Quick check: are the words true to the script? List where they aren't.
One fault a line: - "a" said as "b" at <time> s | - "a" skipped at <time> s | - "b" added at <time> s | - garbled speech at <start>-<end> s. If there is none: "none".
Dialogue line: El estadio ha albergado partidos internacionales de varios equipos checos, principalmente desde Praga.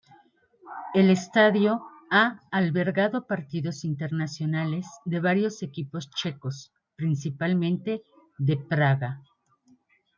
- "desde" said as "de" at 8.4 s